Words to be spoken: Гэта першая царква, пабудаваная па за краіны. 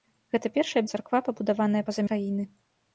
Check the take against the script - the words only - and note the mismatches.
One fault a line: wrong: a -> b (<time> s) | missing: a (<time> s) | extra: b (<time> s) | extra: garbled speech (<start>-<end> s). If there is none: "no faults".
no faults